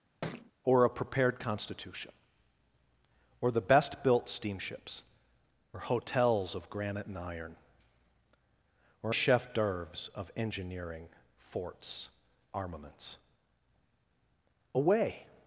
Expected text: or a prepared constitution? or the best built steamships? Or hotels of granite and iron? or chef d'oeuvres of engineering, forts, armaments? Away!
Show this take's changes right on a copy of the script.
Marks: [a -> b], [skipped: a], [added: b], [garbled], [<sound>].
[thud] or a prepared constitution? or the best built steamships? Or hotels of granite and iron? or chef d'oeuvres of engineering, forts, armaments? Away!